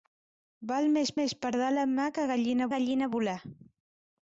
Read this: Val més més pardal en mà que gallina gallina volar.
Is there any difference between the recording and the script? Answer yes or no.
no